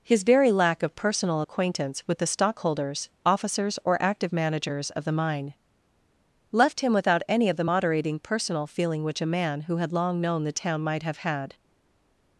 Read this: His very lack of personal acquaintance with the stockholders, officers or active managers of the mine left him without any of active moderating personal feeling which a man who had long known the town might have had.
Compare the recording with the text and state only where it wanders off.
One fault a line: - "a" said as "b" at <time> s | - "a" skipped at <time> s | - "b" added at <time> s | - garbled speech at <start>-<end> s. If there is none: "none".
- "active" said as "the" at 7.6 s